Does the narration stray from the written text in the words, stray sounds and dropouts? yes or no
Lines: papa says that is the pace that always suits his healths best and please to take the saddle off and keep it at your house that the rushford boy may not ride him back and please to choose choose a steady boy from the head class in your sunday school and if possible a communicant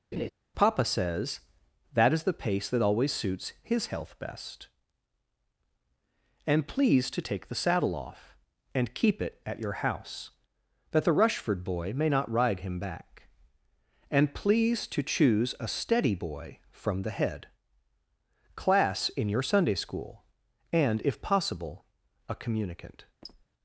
yes